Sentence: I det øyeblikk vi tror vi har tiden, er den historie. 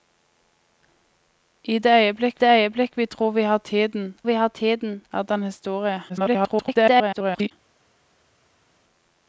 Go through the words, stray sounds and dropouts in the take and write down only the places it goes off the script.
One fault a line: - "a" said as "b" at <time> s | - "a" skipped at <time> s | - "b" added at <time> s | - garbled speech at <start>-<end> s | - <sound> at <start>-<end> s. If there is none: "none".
- "det øyeblikk" added at 2.4 s
- "vi har tiden" added at 4.2 s
- garbled speech at 6.1-7.5 s